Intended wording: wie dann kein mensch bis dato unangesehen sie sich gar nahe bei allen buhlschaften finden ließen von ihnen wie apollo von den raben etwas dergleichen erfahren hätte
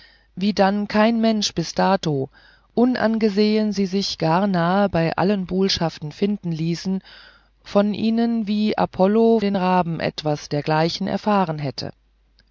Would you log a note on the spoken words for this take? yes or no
yes